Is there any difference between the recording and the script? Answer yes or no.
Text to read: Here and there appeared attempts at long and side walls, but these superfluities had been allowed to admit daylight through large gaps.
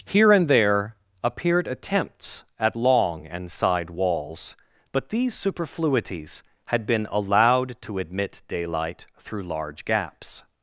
no